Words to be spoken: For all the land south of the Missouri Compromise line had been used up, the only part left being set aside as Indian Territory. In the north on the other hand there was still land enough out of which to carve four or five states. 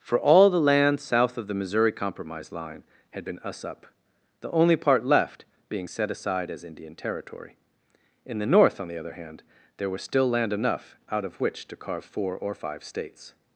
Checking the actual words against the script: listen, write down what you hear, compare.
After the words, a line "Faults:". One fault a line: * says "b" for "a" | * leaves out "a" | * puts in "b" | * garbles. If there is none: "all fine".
For all the land south of the Missouri Compromise line had been us up, the only part left being set aside as Indian Territory. In the north on the other hand there was still land enough out of which to carve four or five states.
Faults:
* says "us" for "used"